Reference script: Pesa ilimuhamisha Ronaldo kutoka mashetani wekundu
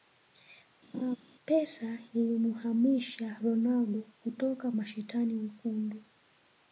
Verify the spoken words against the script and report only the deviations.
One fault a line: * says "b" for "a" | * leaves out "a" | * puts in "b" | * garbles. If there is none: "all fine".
all fine